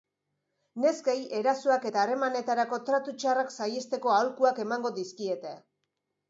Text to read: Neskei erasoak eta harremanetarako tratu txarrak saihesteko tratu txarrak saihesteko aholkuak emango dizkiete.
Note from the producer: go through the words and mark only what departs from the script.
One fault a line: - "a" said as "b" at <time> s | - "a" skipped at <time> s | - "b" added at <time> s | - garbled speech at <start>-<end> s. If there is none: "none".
- "tratu txarrak saihesteko" skipped at 4.1 s